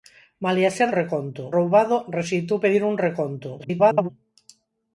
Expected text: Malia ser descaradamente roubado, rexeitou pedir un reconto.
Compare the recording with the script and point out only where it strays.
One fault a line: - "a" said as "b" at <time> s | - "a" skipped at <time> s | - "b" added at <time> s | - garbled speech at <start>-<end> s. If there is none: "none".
- "descaradamente" said as "reconto" at 1.0 s
- garbled speech at 3.6-4.1 s